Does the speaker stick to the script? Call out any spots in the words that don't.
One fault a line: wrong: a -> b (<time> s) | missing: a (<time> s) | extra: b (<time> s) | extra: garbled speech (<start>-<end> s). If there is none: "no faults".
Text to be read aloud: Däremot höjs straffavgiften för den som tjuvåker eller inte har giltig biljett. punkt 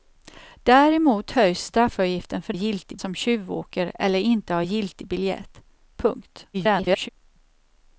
wrong: den -> giltig (2.5 s)
extra: garbled speech (6.5-7.1 s)